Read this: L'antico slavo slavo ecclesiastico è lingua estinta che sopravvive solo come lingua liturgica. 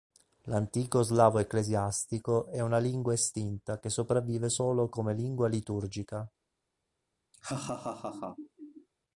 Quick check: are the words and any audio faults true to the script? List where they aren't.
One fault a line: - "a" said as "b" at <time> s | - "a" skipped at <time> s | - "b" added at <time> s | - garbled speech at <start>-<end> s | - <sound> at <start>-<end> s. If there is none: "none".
- "slavo" skipped at 1.4 s
- "una" added at 2.6 s
- laugh at 7.3-8.9 s